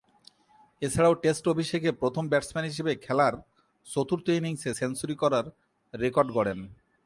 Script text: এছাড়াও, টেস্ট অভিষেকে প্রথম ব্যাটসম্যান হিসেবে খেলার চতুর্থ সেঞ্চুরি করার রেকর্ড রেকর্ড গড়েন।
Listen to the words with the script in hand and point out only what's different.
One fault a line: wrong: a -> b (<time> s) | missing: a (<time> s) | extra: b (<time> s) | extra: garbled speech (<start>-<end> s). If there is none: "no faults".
extra: ইনিংসে (4.3 s)
missing: রেকর্ড (6.3 s)